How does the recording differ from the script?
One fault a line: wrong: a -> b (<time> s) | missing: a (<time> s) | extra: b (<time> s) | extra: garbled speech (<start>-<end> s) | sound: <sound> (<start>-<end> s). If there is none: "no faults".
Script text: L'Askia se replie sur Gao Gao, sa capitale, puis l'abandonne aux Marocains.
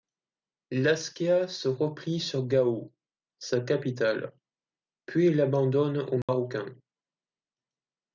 missing: Gao (2.9 s)
sound: dropout (6.2-6.3 s)